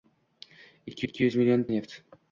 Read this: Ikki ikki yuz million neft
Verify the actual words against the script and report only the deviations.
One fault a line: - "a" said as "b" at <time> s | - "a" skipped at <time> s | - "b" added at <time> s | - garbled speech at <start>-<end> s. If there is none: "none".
none